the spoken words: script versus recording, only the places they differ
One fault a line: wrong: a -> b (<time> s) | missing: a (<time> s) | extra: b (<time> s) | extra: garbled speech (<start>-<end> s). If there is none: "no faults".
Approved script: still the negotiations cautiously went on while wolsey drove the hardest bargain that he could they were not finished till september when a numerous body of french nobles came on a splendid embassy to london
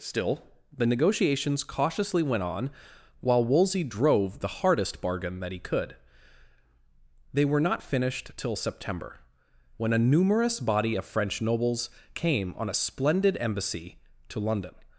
no faults